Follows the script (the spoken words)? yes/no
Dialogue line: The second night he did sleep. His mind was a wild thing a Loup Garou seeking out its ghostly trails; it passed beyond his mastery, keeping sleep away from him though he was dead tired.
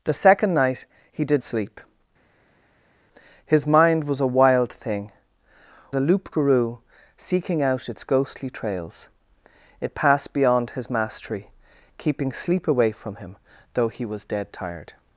yes